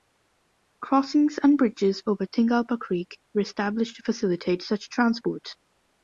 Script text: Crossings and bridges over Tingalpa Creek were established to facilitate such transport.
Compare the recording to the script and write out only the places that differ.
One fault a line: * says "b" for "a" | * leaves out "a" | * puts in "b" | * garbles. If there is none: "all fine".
all fine